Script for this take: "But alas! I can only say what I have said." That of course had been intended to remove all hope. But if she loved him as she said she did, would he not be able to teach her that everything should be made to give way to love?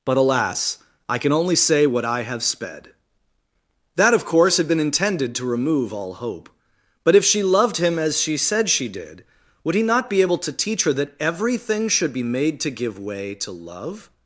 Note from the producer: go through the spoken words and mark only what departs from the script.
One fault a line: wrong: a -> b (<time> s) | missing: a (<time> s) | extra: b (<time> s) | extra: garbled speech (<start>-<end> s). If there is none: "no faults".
wrong: said -> sped (2.4 s)